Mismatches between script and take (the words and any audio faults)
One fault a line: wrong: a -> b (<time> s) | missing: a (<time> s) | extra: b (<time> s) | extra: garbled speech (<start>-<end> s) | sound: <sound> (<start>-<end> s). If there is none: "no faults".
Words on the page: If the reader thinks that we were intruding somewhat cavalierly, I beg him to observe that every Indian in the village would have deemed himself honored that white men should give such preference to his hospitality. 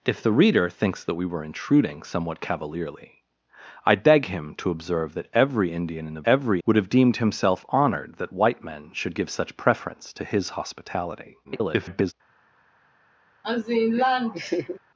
wrong: village -> every (6.2 s)
extra: garbled speech (11.4-12.1 s)
sound: laugh (13.4-14.8 s)